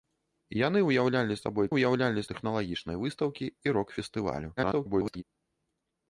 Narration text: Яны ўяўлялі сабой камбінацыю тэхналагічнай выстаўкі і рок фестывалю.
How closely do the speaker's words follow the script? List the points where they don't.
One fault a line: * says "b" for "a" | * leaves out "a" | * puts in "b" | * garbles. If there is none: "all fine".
* says "ўяўлялі" for "камбінацыю"
* garbles